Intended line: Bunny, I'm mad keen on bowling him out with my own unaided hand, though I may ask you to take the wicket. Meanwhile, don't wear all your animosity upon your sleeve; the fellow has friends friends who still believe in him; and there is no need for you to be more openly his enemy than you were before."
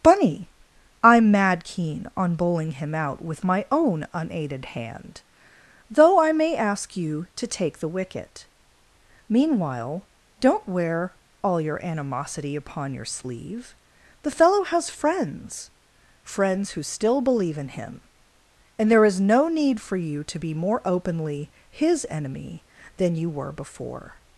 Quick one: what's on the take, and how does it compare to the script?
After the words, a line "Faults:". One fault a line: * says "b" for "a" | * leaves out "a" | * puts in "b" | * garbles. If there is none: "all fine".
Bunny, I'm mad keen on bowling him out with my own unaided hand, though I may ask you to take the wicket. Meanwhile, don't wear all your animosity upon your sleeve; the fellow has friends friends who still believe in him; and there is no need for you to be more openly his enemy than you were before."
Faults:
all fine